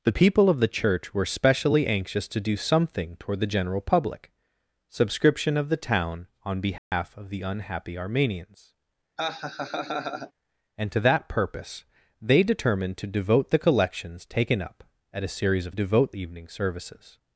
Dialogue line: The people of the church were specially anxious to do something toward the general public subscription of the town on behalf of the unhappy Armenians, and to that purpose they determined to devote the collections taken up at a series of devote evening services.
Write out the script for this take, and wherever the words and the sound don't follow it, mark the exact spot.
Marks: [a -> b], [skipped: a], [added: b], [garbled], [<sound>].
The people of the church were specially anxious to do something toward the general public subscription of the town on behalf [dropout] of the unhappy Armenians, [laugh] and to that purpose they determined to devote the collections taken up at a series of devote evening services.